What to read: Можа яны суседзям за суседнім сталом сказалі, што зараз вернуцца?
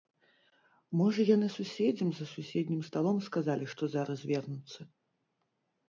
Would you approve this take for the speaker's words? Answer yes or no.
yes